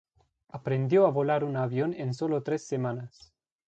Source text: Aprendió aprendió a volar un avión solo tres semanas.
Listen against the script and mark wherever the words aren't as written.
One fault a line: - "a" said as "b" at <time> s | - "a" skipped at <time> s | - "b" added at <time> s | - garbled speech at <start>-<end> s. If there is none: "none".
- "aprendió" skipped at 1.1 s
- "en" added at 1.9 s